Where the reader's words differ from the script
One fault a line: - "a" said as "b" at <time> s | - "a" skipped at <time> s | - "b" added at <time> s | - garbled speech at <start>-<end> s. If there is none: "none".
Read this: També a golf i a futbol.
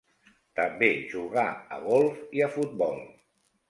- "jugà" added at 1.1 s